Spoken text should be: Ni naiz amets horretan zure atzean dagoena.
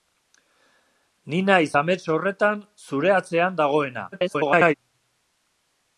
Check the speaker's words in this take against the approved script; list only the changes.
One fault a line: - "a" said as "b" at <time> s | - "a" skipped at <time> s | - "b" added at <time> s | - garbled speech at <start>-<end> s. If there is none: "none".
- garbled speech at 4.1-4.7 s